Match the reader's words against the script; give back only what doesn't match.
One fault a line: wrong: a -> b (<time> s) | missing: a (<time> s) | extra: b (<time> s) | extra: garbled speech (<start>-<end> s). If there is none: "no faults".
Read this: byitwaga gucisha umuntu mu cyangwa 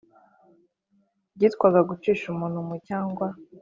no faults